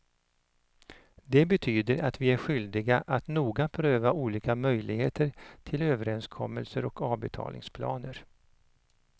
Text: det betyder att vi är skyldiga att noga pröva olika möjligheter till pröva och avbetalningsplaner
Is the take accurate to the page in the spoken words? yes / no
no